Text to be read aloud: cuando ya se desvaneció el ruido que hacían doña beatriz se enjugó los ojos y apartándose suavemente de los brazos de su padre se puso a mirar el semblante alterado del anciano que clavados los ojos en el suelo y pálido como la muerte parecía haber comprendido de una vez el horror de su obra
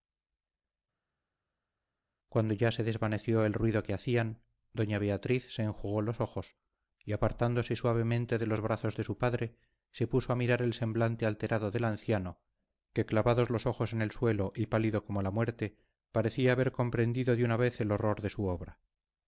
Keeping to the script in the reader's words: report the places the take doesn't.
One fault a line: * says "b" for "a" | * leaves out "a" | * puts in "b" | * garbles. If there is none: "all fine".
all fine